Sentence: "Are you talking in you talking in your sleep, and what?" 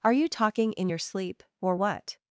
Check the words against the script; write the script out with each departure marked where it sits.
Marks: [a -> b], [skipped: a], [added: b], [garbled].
"Are you talking in [skipped: you talking in] your sleep, [and -> or] what?"